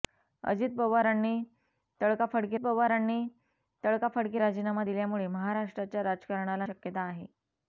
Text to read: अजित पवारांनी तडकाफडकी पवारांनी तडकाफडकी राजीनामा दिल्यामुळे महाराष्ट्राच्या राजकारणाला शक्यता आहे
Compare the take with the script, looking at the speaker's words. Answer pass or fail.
pass